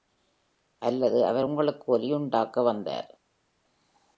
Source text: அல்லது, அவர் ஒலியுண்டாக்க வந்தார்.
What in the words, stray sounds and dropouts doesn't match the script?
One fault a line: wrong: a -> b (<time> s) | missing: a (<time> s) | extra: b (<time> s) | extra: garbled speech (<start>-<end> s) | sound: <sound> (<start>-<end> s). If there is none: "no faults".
extra: உங்களுக்கு (1.4 s)